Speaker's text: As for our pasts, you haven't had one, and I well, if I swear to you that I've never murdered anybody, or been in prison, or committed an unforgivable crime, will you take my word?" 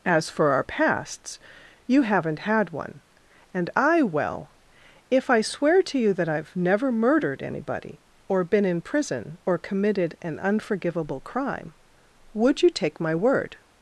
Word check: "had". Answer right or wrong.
right